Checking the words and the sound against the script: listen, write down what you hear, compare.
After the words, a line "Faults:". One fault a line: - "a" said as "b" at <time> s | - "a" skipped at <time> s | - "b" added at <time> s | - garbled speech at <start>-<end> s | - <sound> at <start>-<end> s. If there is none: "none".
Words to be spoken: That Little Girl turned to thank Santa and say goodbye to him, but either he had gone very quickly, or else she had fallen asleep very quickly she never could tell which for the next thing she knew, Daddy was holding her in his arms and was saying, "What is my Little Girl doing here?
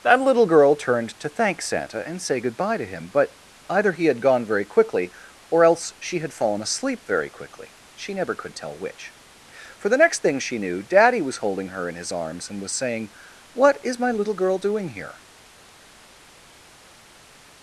That Little Girl turned to thank Santa and say goodbye to him, but either he had gone very quickly, or else she had fallen asleep very quickly she never could tell which for the next thing she knew, Daddy was holding her in his arms and was saying, "What is my Little Girl doing here?
Faults:
none